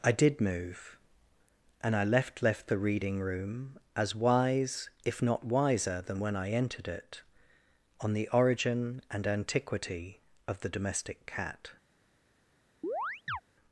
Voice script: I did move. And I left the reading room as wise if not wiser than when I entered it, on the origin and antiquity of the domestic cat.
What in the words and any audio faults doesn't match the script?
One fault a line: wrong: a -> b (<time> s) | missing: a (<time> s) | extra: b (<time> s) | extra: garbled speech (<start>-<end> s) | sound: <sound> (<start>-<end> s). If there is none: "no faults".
extra: left (2.4 s)
sound: chirp (12.8-13.4 s)